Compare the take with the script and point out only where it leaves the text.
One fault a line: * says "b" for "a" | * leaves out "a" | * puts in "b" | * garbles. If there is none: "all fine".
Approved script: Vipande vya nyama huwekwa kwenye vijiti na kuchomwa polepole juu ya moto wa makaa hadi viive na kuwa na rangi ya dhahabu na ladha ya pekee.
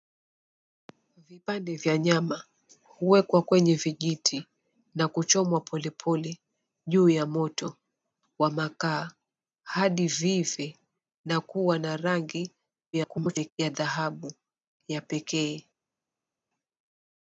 * garbles
* leaves out "na ladha"